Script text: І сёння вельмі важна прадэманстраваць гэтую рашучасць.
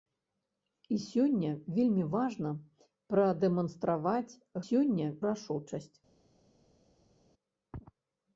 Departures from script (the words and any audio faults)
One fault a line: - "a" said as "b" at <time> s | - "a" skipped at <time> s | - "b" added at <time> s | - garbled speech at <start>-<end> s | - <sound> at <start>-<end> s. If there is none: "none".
- "гэтую" said as "сёння" at 4.7 s